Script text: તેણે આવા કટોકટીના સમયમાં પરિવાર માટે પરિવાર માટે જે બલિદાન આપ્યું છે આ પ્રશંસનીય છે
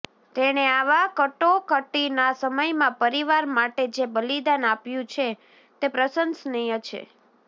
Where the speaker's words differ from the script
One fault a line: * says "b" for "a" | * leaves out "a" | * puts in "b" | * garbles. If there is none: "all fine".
* leaves out "પરિવાર માટે"
* says "તે" for "આ"